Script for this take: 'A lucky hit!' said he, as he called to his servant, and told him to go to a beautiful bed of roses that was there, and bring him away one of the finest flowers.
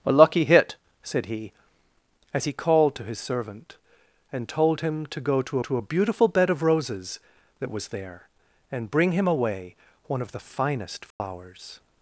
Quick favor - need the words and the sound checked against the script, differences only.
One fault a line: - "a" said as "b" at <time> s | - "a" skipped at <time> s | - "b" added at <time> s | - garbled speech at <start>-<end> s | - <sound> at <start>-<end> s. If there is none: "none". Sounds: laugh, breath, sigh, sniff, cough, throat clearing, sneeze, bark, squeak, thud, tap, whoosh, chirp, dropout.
- "to" added at 5.6 s
- dropout at 11.1-11.2 s